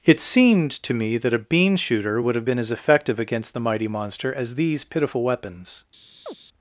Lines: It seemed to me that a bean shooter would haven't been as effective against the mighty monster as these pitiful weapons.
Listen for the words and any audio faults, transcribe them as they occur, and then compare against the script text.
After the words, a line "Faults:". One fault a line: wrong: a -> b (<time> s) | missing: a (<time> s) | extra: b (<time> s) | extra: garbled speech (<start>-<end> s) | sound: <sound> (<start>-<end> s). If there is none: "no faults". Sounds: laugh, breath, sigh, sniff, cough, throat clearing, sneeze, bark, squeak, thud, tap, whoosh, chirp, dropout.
It seemed to me that a bean shooter would have been as effective against the mighty monster as these pitiful weapons.
Faults:
wrong: haven't -> have (2.4 s)
sound: chirp (6.3-6.4 s)